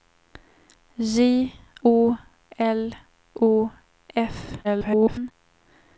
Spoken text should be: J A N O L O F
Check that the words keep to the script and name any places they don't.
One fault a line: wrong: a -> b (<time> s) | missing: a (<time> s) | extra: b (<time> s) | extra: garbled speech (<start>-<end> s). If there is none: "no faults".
missing: A N (1.5 s)
extra: garbled speech (4.6-5.3 s)